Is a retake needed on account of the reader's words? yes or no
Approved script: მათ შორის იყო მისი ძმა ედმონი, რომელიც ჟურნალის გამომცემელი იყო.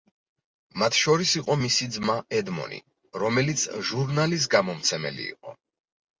no